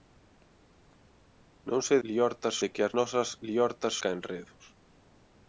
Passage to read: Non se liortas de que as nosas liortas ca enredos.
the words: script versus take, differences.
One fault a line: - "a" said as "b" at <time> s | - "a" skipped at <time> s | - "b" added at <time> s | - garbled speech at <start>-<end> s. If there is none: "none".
none